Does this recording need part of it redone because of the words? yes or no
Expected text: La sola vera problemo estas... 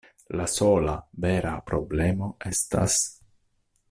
no